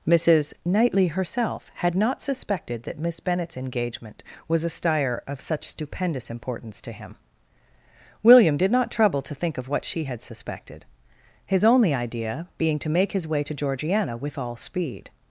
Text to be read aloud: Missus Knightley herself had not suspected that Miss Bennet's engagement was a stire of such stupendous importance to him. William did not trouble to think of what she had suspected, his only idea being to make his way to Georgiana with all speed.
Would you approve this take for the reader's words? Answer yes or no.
yes